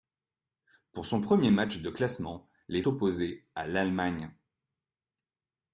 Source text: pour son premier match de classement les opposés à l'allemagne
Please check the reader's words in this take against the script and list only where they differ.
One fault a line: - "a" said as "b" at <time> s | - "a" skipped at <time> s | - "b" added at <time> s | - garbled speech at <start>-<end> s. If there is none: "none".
none